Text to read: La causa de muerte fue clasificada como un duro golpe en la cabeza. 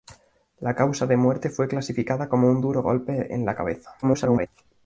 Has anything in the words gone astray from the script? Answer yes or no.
yes